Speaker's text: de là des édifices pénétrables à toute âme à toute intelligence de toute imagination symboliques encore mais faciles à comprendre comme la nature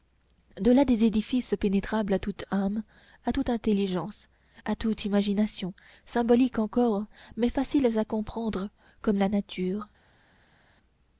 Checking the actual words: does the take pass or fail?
fail